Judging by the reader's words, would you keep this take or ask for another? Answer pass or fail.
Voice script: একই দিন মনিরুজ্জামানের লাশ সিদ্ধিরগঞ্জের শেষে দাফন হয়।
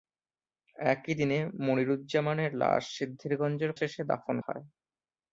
pass